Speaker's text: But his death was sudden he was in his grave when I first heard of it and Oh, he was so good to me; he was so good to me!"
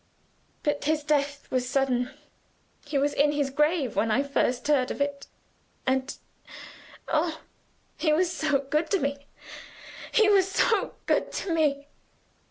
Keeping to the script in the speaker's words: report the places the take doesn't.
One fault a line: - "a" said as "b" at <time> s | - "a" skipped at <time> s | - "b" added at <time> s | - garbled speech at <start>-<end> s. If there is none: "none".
none